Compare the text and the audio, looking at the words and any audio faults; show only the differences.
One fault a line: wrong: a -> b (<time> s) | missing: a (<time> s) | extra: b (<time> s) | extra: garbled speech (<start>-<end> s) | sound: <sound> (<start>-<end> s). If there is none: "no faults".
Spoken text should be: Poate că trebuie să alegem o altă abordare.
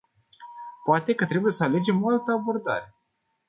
no faults